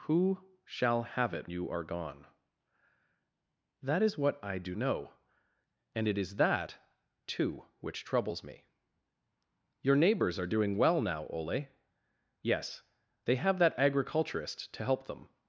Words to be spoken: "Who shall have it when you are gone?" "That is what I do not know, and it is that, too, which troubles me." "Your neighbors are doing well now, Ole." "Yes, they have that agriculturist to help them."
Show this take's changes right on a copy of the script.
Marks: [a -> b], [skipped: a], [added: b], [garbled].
"Who shall have it [skipped: when] you are gone?" "That is what I do [skipped: not] know, and it is that, too, which troubles me." "Your neighbors are doing well now, Ole." "Yes, they have that agriculturist to help them."